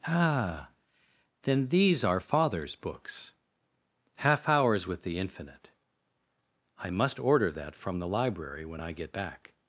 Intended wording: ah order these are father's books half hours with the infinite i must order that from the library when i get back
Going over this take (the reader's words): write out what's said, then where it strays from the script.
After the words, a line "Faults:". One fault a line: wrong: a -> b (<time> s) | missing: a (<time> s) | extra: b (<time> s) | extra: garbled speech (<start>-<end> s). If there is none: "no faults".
ah then these are father's books half hours with the infinite i must order that from the library when i get back
Faults:
wrong: order -> then (1.4 s)